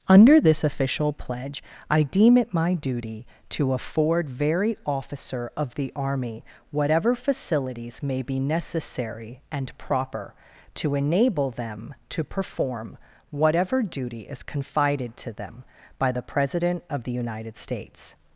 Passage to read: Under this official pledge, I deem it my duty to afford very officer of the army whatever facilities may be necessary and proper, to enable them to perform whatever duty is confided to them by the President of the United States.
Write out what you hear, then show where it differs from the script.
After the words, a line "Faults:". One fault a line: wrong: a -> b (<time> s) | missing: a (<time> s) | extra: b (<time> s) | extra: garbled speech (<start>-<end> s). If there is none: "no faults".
Under this official pledge, I deem it my duty to afford very officer of the army whatever facilities may be necessary and proper, to enable them to perform whatever duty is confided to them by the President of the United States.
Faults:
no faults